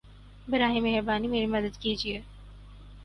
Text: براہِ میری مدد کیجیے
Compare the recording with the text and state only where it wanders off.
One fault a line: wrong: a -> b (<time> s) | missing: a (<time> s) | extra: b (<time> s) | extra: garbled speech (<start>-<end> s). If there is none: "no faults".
extra: مہربانی (0.8 s)